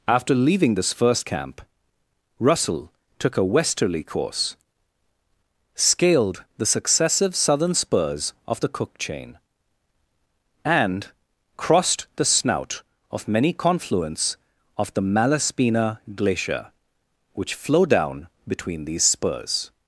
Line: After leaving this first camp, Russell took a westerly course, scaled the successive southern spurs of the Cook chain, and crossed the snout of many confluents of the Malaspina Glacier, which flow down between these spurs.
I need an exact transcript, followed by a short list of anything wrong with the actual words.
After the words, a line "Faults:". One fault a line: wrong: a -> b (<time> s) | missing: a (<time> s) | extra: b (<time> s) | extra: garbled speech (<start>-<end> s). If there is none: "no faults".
After leaving this first camp, Russell took a westerly course, scaled the successive southern spurs of the Cook chain, and crossed the snout of many confluents of the Malaspina Glacier, which flow down between these spurs.
Faults:
no faults